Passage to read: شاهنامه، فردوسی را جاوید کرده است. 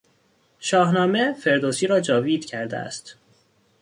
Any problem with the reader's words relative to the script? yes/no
no